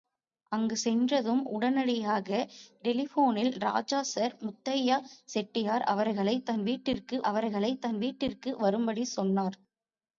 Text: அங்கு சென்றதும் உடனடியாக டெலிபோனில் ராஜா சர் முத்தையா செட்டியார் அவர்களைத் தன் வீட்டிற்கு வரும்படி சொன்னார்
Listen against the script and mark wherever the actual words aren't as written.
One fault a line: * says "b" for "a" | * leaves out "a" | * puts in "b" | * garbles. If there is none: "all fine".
* puts in "அவர்களைத் தன் வீட்டிற்கு"